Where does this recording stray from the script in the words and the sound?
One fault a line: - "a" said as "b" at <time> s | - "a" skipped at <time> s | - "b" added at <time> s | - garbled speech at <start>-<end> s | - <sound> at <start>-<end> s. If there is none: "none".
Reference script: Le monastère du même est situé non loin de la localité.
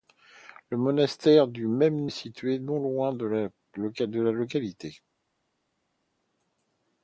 none